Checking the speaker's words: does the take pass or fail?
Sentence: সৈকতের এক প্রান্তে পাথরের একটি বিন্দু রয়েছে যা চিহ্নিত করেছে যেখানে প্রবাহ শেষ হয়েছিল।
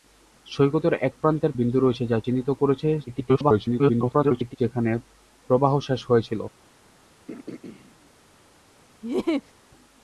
fail